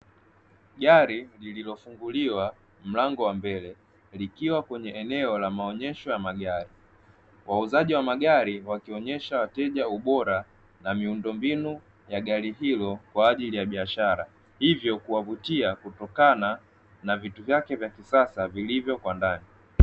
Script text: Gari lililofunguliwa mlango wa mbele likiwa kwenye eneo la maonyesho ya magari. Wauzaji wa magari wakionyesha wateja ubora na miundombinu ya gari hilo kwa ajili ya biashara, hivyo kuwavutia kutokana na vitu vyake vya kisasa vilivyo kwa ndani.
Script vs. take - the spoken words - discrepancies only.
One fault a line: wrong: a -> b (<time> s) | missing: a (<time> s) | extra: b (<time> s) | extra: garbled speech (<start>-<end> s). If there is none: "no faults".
no faults